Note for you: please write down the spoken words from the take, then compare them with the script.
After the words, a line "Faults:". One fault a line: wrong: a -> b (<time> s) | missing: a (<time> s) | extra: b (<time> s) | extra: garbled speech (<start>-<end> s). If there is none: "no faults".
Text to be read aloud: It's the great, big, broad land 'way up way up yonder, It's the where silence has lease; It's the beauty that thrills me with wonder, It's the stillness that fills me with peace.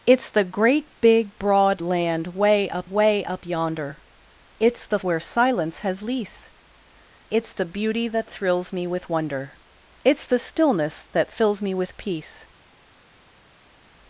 It's the great, big, broad land 'way up way up yonder, It's the where silence has lease; It's the beauty that thrills me with wonder, It's the stillness that fills me with peace.
Faults:
no faults